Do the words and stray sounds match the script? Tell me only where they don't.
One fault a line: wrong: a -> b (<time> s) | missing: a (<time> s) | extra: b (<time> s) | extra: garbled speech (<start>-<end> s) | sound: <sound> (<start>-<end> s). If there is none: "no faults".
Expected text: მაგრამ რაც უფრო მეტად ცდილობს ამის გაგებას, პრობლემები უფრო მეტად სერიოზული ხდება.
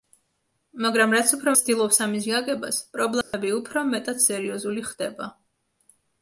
missing: მეტად (1.5 s)
sound: dropout (3.2-3.3 s)